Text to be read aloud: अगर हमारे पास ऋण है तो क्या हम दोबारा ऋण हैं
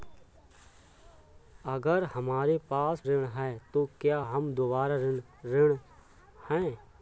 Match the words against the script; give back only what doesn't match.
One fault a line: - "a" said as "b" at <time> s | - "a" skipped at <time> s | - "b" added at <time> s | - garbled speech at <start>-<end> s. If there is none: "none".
none